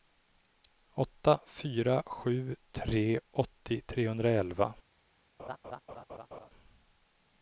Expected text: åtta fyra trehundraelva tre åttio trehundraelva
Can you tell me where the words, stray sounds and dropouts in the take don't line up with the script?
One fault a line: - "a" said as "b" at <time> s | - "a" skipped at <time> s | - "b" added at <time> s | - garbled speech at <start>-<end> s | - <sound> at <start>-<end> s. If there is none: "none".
- "trehundraelva" said as "sju" at 2.0 s
- laugh at 5.4-6.5 s